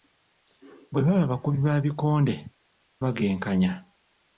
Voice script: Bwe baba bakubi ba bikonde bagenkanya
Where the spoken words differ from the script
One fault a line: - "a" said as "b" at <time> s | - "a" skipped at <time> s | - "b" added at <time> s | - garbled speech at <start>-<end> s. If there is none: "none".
none